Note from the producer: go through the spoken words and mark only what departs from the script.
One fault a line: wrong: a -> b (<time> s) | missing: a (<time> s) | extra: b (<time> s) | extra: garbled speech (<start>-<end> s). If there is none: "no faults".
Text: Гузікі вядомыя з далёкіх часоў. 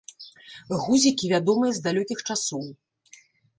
no faults